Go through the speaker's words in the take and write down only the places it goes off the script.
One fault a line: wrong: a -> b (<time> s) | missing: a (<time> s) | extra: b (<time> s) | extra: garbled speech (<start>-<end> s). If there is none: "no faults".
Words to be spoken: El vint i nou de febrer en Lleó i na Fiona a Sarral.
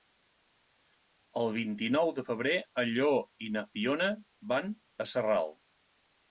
extra: van (4.5 s)